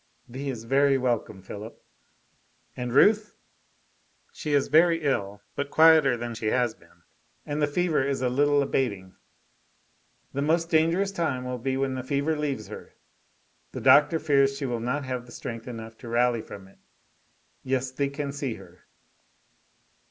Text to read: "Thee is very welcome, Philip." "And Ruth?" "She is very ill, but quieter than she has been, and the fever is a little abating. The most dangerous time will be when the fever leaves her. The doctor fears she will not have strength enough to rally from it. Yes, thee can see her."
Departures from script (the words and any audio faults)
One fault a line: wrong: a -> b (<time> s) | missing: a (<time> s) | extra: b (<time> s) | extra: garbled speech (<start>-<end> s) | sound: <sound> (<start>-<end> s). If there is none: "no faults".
no faults